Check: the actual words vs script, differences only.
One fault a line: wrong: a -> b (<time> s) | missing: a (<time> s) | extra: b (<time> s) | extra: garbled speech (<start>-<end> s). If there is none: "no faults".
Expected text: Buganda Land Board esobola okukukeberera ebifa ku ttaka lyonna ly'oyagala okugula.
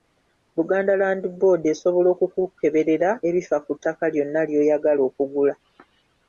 no faults